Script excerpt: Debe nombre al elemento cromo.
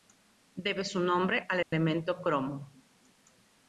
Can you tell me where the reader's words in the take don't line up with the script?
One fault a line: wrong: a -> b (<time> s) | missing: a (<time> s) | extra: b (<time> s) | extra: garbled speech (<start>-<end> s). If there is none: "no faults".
extra: su (0.8 s)